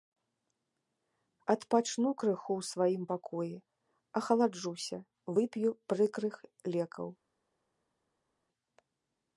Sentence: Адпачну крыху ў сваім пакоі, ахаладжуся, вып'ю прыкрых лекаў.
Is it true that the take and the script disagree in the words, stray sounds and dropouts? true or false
false